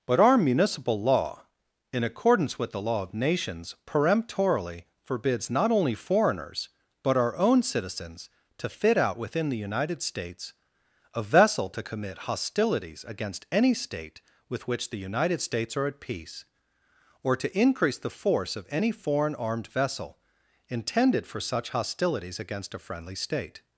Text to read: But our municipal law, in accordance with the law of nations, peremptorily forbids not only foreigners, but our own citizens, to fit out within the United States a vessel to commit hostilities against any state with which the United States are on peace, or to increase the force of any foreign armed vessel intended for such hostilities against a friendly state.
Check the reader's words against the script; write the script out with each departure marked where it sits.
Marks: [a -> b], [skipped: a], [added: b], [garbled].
But our municipal law, in accordance with the law of nations, peremptorily forbids not only foreigners, but our own citizens, to fit out within the United States a vessel to commit hostilities against any state with which the United States are [on -> at] peace, or to increase the force of any foreign armed vessel intended for such hostilities against a friendly state.